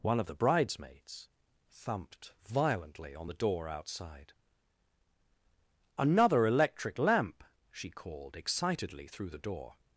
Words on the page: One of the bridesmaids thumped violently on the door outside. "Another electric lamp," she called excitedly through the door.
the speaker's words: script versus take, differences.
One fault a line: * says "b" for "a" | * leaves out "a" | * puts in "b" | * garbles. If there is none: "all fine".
all fine